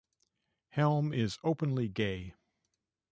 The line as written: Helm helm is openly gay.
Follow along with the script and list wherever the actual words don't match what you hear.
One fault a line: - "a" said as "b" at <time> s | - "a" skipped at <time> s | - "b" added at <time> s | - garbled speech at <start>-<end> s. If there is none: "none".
- "helm" skipped at 1.1 s